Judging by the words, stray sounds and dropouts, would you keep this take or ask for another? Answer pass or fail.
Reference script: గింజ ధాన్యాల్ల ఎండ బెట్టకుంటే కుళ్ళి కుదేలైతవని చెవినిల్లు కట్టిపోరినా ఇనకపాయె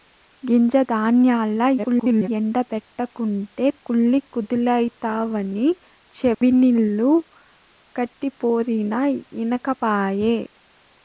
fail